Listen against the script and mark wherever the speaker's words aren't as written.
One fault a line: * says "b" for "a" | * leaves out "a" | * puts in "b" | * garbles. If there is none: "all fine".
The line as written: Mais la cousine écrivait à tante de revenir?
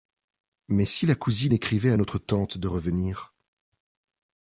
* puts in "si"
* puts in "notre"